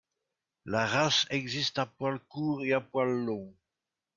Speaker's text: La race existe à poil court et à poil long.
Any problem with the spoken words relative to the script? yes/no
no